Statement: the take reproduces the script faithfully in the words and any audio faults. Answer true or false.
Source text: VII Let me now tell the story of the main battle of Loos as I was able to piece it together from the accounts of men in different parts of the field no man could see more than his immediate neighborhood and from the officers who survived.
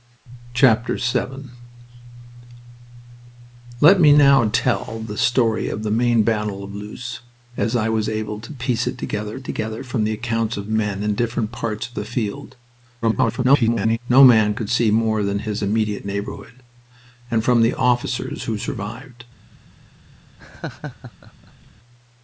false